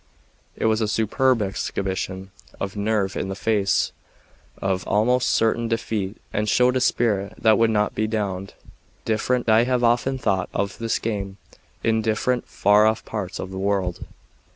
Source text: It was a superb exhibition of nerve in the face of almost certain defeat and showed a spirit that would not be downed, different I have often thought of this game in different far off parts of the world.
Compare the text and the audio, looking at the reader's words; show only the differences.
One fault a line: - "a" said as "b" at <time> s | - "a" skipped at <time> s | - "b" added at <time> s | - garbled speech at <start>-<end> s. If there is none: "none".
none